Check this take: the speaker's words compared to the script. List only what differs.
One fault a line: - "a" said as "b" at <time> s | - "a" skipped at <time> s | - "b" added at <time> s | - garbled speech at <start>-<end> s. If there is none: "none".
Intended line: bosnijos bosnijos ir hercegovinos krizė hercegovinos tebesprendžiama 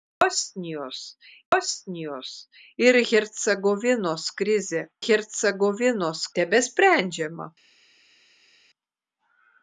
none